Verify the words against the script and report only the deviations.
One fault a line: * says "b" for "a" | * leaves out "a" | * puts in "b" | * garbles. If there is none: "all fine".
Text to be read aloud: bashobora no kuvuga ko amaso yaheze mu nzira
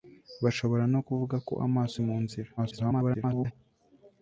* leaves out "yaheze"
* garbles